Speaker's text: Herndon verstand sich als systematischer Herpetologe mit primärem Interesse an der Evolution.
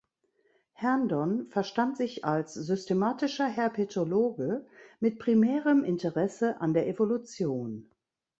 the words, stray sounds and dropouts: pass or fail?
pass